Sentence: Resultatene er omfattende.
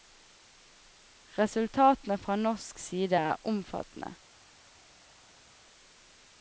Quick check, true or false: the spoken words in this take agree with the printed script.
false